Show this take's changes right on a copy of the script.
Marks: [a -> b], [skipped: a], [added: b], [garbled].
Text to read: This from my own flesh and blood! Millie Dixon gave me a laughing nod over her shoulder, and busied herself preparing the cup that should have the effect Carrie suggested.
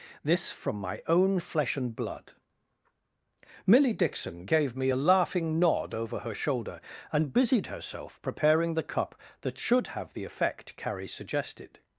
This from my own flesh and blood! Millie Dixon gave me a laughing nod over her shoulder, and busied herself preparing the cup that should have the effect Carrie suggested.